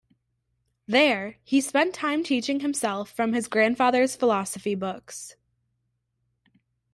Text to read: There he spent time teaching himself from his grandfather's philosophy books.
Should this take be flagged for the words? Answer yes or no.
no